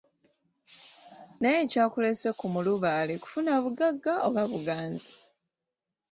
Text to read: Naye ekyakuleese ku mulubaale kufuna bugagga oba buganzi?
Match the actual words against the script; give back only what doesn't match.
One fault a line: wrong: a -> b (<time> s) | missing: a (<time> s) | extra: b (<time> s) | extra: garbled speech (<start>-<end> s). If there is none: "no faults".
no faults